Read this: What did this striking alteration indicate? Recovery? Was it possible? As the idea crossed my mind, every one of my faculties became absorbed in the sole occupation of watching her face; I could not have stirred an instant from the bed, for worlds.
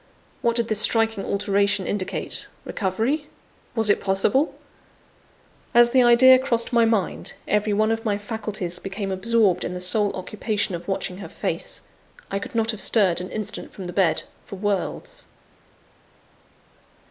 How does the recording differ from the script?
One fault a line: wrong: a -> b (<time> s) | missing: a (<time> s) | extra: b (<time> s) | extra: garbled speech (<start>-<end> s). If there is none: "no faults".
no faults